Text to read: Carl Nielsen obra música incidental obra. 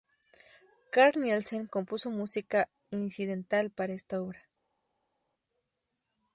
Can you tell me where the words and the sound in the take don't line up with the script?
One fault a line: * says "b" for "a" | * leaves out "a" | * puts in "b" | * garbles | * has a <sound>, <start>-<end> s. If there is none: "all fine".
* says "compuso" for "obra"
* puts in "para esta"